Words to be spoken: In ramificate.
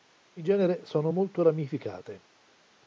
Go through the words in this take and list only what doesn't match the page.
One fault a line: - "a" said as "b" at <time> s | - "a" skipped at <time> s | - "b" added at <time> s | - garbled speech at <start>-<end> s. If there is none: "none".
- "genere sono molto" added at 0.4 s